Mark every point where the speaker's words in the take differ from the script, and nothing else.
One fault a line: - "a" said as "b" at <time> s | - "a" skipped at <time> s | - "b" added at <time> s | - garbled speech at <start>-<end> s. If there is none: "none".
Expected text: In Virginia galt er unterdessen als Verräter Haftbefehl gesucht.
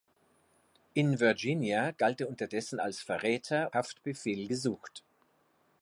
none